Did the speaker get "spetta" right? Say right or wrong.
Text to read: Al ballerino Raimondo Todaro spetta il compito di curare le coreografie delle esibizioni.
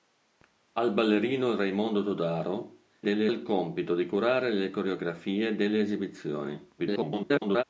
wrong